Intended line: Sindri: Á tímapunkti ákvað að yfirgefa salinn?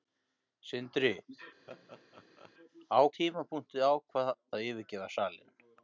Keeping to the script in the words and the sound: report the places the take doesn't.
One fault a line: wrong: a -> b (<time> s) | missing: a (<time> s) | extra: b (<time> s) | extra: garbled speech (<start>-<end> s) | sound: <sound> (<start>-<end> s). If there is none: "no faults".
sound: laugh (1.7-2.5 s)